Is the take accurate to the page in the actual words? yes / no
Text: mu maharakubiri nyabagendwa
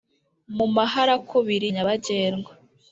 yes